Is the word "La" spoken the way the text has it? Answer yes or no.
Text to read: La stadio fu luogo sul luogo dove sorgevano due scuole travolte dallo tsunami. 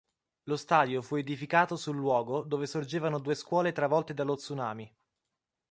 no